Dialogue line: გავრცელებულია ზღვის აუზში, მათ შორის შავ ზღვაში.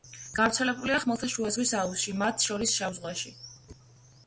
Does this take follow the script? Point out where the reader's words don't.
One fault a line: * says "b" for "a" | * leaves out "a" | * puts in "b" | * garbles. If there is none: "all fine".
* puts in "ხმელთაშუა"